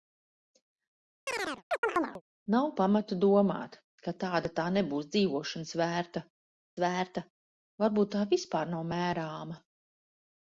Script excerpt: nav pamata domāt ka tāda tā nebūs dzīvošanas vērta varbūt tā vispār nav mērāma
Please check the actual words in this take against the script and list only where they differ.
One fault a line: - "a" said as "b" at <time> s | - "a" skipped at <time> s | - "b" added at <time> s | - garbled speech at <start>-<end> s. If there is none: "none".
- "vērta" added at 6.8 s